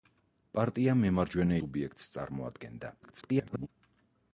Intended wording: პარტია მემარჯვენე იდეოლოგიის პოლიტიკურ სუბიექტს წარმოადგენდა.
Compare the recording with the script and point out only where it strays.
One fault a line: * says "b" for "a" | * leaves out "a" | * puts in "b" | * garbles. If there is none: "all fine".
* leaves out "იდეოლოგიის პოლიტიკურ"
* garbles